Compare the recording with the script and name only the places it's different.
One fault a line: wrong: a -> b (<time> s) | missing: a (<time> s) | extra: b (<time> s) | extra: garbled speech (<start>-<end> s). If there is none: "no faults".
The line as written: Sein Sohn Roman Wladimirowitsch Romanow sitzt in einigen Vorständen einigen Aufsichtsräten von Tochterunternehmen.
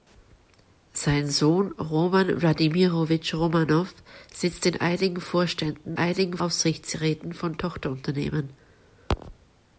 no faults